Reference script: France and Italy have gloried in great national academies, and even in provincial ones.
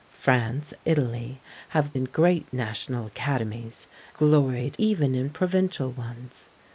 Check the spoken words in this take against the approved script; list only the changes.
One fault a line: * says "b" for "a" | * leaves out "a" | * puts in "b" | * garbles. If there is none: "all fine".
* leaves out "and"
* leaves out "gloried"
* says "gloried" for "and"